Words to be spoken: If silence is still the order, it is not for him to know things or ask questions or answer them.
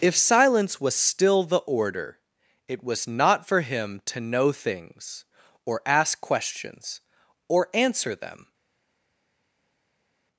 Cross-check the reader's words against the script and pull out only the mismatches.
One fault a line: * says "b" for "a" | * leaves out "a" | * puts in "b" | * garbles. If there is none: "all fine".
* says "was" for "is"
* says "was" for "is"